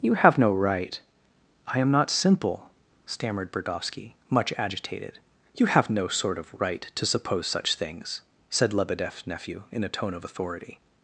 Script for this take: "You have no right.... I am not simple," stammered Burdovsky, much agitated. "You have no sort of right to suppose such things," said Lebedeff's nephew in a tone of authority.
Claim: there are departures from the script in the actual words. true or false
false